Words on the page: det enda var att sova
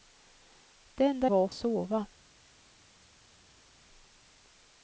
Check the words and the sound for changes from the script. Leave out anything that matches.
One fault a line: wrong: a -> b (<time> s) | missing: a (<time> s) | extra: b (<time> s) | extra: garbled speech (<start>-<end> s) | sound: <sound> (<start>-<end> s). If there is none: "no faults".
no faults